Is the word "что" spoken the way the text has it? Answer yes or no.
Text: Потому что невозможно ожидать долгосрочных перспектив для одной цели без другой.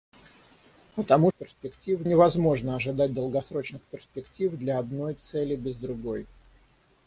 no